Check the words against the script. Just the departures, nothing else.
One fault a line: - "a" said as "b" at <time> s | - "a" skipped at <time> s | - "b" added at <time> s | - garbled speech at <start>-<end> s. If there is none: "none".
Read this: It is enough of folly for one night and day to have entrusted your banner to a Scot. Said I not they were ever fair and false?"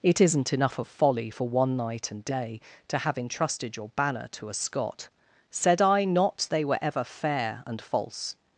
- "is" said as "isn't" at 0.2 s